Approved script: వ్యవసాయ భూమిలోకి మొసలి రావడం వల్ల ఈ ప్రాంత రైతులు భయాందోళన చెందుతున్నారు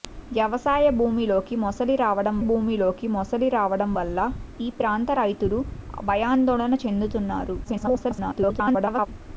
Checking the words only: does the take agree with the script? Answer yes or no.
no